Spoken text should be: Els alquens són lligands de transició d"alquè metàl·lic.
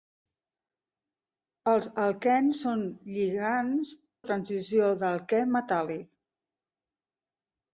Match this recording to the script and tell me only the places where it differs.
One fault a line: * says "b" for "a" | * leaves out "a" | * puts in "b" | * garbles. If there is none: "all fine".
all fine